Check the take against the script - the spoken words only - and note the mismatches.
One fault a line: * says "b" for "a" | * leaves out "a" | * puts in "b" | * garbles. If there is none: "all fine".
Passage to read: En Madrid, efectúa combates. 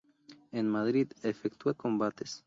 all fine